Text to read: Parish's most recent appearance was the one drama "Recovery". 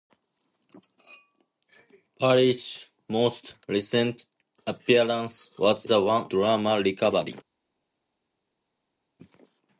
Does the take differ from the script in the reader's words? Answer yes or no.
no